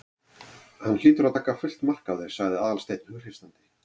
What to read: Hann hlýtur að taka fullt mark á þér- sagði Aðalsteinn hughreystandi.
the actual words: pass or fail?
pass